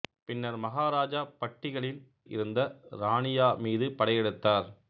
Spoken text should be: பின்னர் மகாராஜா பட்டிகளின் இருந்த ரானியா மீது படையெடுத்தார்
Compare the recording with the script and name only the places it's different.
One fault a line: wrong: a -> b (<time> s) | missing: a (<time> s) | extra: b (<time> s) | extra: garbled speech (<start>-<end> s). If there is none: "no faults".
no faults